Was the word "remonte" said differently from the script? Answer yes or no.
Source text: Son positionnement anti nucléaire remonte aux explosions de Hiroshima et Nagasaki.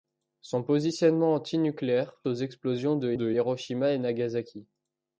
yes